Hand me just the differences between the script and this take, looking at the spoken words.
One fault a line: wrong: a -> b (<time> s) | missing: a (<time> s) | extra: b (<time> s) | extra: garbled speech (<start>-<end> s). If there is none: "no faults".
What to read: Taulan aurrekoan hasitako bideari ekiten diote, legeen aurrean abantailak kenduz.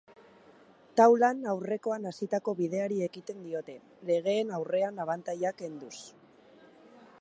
no faults